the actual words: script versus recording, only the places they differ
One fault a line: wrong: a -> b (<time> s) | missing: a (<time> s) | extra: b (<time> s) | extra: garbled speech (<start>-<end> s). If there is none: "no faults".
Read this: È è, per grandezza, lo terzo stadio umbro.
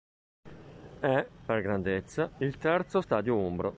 missing: è (1.3 s)
wrong: lo -> il (2.4 s)